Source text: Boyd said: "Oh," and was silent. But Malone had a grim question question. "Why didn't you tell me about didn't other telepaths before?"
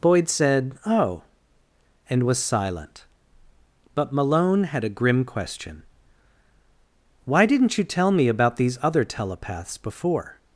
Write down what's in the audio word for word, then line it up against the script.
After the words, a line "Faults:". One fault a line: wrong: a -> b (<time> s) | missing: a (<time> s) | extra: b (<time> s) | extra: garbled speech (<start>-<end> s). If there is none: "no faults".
Boyd said: "Oh," and was silent. But Malone had a grim question. "Why didn't you tell me about these other telepaths before?"
Faults:
missing: question (5.8 s)
wrong: didn't -> these (8.6 s)